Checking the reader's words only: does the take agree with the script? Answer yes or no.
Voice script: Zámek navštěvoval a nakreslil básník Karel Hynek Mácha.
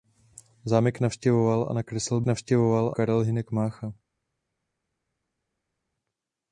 no